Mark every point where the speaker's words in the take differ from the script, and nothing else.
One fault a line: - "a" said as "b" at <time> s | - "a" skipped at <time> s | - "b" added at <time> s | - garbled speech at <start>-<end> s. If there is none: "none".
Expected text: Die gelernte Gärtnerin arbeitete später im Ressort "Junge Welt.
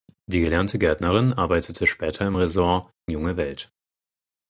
none